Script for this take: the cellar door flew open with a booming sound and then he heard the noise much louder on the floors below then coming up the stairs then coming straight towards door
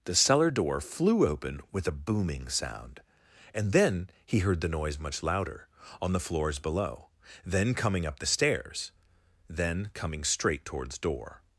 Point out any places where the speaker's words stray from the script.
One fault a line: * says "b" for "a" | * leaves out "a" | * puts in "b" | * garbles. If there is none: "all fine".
all fine